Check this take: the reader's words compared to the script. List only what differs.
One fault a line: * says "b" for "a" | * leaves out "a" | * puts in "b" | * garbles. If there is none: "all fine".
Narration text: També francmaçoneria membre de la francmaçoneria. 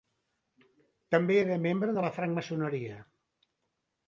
* says "era" for "francmaçoneria"